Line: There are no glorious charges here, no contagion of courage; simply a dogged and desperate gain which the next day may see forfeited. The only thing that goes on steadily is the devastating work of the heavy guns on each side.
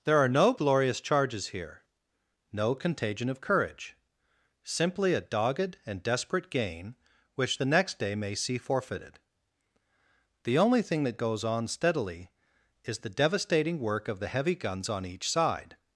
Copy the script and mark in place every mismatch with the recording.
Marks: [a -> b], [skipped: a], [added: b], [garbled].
There are no glorious charges here, no contagion of courage; simply a dogged and desperate gain which the next day may see forfeited. The only thing that goes on steadily is the devastating work of the heavy guns on each side.